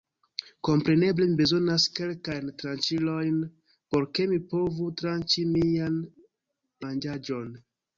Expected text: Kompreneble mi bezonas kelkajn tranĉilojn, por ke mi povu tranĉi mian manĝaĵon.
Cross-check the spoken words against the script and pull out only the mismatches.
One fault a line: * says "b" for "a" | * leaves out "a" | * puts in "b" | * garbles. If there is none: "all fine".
all fine